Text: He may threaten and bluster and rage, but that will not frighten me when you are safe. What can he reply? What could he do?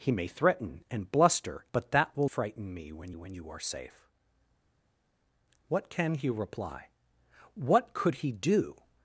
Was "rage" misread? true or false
true